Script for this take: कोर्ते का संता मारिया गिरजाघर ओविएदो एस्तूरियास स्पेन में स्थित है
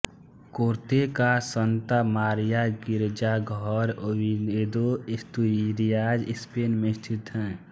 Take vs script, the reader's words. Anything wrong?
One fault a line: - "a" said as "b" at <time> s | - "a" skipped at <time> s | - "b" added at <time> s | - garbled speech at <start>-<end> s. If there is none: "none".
none